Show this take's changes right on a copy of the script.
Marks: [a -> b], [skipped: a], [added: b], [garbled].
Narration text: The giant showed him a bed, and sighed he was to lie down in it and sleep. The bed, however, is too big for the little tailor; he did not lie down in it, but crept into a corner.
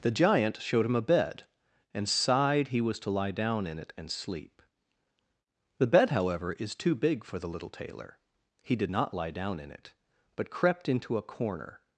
The giant showed him a bed, and sighed he was to lie down in it and sleep. The bed, however, is too big for the little tailor; he did not lie down in it, but crept into a corner.